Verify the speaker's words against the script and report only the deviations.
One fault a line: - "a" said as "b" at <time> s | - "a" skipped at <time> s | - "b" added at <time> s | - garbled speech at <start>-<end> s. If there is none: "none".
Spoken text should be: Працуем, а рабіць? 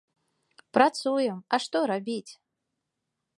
- "што" added at 1.6 s